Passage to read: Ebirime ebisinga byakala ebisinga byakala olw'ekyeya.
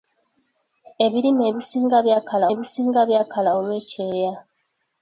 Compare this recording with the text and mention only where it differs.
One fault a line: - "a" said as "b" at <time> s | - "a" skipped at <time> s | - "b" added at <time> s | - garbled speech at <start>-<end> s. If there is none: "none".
none